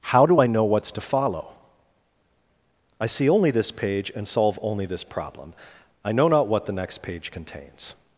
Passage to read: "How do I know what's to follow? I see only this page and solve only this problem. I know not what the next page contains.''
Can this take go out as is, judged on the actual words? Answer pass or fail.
pass